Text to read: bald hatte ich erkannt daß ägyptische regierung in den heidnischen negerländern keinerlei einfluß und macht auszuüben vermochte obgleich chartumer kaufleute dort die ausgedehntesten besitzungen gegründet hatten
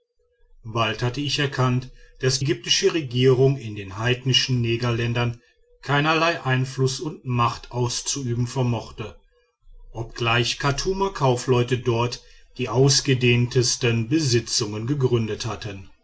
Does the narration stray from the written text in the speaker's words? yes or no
no